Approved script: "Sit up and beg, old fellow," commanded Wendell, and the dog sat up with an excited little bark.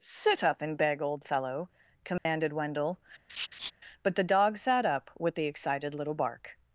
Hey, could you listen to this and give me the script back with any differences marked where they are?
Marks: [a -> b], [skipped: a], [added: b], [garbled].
"Sit up and beg, old fellow," commanded Wendell, [and -> but] the dog sat up with [an -> the] excited little bark.